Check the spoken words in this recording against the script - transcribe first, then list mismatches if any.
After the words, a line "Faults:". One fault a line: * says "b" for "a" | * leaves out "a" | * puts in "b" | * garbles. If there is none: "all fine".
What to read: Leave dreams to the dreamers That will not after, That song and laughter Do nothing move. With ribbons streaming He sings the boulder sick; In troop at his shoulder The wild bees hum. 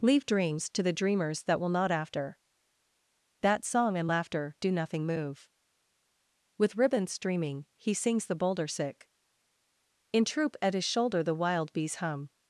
Leave dreams to the dreamers That will not after, That song and laughter Do nothing move. With ribbons streaming He sings the boulder sick; In troop at his shoulder The wild bees hum.
Faults:
all fine